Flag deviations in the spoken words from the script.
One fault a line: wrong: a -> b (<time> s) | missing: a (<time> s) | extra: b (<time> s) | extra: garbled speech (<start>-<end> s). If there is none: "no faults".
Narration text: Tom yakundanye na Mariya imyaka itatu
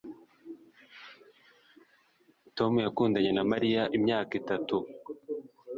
no faults